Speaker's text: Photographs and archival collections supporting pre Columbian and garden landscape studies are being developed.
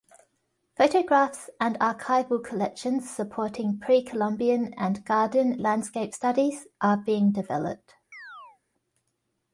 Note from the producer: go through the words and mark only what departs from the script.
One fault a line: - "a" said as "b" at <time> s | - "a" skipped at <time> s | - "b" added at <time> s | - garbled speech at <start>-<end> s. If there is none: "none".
none